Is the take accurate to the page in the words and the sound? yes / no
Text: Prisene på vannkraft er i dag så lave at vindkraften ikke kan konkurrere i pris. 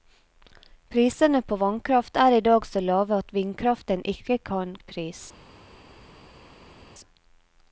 no